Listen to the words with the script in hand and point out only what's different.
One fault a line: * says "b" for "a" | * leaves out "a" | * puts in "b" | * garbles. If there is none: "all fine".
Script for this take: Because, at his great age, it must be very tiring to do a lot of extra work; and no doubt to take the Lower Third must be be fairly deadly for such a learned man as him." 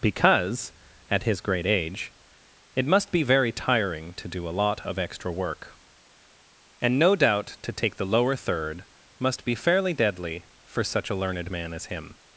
* leaves out "be"